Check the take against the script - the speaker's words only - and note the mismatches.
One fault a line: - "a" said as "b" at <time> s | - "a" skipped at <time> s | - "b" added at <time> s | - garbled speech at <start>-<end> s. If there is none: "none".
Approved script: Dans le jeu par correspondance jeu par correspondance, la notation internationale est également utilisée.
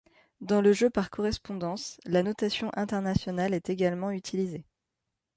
- "jeu par correspondance" skipped at 2.0 s